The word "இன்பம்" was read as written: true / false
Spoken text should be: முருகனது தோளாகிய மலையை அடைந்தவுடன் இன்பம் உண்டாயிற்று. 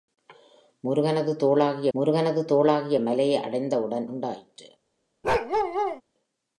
false